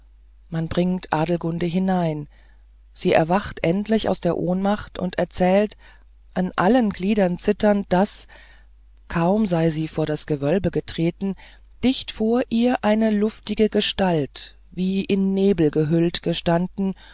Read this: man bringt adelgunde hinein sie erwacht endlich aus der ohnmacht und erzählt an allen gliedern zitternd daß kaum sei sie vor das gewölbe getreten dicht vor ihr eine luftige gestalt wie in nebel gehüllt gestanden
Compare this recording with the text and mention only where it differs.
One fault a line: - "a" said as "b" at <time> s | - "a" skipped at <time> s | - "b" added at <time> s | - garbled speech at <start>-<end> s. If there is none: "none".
none